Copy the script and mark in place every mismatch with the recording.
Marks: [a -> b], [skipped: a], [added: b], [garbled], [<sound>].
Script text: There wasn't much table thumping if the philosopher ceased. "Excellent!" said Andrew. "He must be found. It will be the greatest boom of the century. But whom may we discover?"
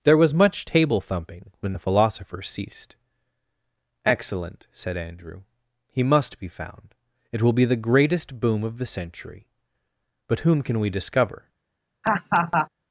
There [wasn't -> was] much table thumping [if -> when] the philosopher ceased. "Excellent!" said Andrew. "He must be found. It will be the greatest boom of the century. But whom [may -> can] we discover?" [laugh]